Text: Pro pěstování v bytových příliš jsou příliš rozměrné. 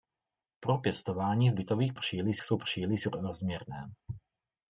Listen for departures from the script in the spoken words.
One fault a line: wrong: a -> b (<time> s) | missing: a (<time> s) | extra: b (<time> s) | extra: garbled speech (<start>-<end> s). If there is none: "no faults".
no faults